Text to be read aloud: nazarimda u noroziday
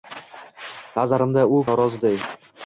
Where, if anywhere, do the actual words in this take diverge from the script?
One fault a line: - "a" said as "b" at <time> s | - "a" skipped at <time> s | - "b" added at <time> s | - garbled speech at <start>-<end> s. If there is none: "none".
none